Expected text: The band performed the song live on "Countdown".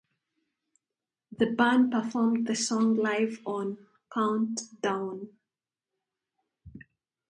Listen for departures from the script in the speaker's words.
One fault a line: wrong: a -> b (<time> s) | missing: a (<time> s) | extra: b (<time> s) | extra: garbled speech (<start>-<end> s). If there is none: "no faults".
no faults